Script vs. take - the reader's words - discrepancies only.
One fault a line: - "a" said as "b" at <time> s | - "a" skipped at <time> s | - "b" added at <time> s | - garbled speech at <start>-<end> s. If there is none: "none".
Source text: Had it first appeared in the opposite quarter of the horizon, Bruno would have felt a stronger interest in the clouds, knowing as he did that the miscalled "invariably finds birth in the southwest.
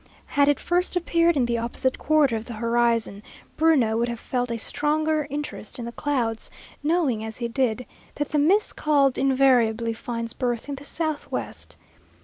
none